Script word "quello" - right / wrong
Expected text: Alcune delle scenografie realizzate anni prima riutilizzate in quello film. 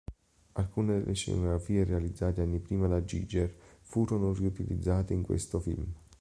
wrong